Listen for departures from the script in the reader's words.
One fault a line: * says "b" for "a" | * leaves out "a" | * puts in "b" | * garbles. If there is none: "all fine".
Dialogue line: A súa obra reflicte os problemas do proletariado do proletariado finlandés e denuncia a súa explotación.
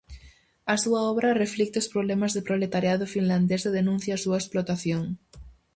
* leaves out "do proletariado"